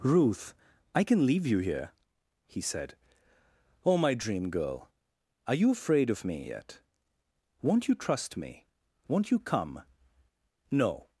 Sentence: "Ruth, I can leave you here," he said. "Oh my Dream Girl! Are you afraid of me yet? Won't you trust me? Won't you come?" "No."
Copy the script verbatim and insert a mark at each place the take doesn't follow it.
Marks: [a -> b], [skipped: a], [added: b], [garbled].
"Ruth, I can leave you here," he said. "Oh my Dream Girl! Are you afraid of me yet? Won't you trust me? Won't you come?" "No."